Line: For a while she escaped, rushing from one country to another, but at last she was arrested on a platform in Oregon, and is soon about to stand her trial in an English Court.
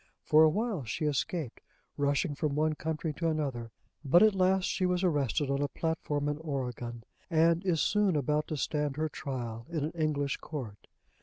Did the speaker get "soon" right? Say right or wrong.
right